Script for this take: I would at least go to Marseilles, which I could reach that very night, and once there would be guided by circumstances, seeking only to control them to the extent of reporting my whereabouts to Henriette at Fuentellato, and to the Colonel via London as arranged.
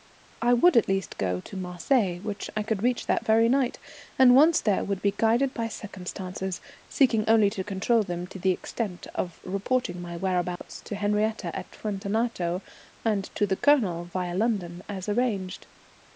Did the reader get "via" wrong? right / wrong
right